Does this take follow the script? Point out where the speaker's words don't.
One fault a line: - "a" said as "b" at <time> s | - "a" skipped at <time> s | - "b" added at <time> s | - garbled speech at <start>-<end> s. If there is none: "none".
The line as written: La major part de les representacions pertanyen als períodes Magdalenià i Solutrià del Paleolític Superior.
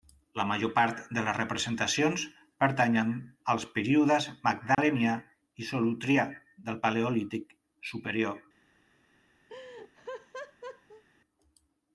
none